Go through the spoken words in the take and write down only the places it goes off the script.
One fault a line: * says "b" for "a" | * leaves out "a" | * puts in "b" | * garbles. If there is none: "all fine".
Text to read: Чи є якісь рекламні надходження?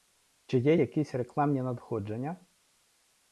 all fine